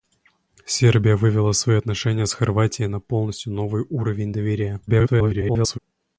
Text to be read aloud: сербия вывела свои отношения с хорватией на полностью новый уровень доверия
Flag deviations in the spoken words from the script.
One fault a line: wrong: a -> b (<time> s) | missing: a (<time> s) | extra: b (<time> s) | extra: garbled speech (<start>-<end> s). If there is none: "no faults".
extra: garbled speech (4.9-5.8 s)